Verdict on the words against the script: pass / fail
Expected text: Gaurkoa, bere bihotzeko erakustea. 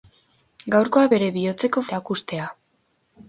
pass